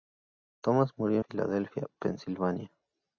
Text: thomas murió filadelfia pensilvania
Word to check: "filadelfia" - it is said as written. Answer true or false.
true